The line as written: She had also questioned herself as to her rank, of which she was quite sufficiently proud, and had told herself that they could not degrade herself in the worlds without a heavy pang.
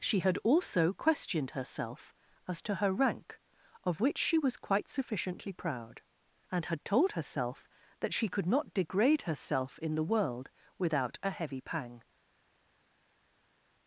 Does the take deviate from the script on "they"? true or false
true